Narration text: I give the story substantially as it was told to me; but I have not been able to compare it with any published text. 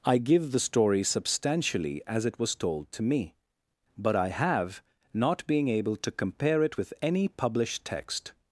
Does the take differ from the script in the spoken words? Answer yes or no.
yes